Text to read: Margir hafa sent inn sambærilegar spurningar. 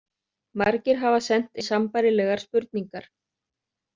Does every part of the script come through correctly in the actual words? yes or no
no